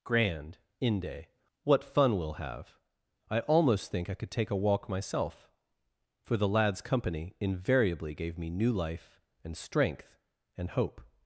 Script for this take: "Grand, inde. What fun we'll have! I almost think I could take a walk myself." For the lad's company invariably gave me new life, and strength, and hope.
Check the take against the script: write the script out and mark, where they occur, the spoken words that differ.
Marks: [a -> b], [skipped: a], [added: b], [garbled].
"Grand, inde. What fun we'll have! I almost think I could take a walk myself." For the lad's company invariably gave me new life, and strength, and hope.